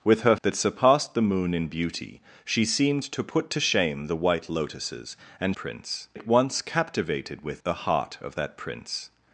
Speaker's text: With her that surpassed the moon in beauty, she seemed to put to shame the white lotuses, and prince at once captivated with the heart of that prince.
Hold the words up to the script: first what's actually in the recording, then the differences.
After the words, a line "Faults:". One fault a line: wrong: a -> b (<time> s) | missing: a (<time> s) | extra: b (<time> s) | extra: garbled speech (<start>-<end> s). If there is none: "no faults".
With her that surpassed the moon in beauty, she seemed to put to shame the white lotuses, and prince at once captivated with the heart of that prince.
Faults:
no faults